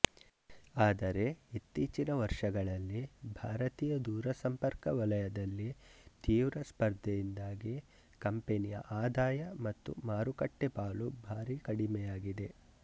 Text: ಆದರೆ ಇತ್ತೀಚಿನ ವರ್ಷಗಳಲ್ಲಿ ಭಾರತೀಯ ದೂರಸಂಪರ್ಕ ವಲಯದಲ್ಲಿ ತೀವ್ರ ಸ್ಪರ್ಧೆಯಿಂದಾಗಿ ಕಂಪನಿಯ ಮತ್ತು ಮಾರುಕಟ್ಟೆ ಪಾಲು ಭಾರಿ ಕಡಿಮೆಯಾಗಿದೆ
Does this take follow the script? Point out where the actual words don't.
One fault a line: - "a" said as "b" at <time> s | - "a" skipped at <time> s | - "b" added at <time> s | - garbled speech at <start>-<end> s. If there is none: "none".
- "ಆದಾಯ" added at 9.0 s